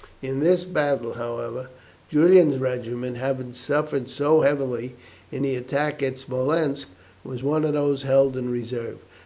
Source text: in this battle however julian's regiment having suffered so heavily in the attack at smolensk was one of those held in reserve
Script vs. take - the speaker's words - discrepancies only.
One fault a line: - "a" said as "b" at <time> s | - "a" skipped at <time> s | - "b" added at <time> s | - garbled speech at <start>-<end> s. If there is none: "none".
none